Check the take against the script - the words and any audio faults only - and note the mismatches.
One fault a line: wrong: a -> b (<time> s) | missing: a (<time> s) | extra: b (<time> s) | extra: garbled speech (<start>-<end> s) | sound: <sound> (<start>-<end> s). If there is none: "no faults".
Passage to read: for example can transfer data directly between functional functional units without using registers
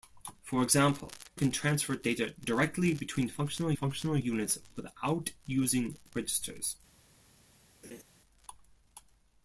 sound: laugh (7.8-8.0 s)